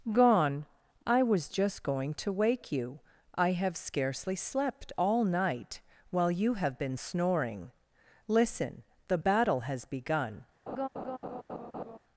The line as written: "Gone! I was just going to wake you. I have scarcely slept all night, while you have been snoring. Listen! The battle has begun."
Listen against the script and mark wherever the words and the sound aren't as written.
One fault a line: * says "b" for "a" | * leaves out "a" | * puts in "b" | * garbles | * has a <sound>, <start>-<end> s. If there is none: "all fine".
* has a laugh, 10.7-12.0 s